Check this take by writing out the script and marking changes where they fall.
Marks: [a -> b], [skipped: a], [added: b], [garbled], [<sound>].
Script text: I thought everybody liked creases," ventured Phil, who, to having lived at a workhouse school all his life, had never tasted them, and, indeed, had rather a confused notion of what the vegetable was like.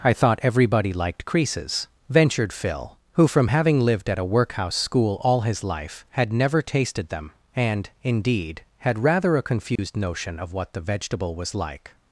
I thought everybody liked creases," ventured Phil, who, [to -> from] having lived at a workhouse school all his life, had never tasted them, and, indeed, had rather a confused [dropout] notion of what the vegetable was like.